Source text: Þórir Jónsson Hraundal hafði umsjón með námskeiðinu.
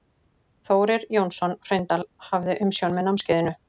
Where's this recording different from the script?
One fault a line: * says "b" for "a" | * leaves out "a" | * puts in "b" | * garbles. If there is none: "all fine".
all fine